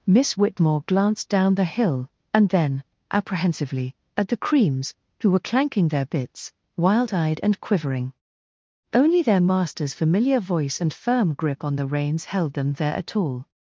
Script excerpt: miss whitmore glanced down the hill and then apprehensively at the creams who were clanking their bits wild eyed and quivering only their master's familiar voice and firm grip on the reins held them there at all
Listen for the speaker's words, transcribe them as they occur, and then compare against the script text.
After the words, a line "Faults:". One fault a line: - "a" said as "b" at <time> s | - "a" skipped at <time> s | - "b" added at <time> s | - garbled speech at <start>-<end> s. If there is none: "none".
miss whitmore glanced down the hill and then apprehensively at the creams who were clanking their bits wild eyed and quivering only their master's familiar voice and firm grip on the reins held them there at all
Faults:
none